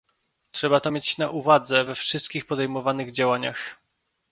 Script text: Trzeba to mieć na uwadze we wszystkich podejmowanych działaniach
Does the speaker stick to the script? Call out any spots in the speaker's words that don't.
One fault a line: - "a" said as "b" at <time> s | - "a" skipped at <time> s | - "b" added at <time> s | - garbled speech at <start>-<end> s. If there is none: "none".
none